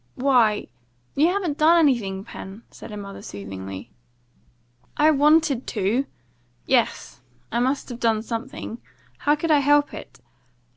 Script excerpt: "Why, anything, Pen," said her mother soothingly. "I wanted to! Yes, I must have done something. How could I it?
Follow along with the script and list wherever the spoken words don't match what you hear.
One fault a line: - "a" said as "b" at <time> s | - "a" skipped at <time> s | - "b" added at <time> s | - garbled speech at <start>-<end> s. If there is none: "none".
- "you haven't done" added at 1.1 s
- "help" added at 9.6 s